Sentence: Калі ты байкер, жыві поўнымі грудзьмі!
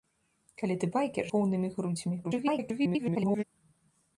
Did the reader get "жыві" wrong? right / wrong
wrong